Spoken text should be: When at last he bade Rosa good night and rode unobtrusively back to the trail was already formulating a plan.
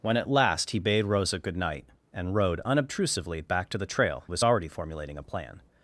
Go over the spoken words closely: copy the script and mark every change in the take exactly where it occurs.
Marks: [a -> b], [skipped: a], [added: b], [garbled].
When at last he bade Rosa good night and rode unobtrusively back to the trail was already formulating a plan.